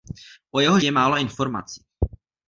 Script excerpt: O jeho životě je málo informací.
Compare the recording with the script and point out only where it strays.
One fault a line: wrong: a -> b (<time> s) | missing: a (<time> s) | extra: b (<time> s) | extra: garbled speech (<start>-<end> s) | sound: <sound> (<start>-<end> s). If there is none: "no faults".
missing: životě (0.8 s)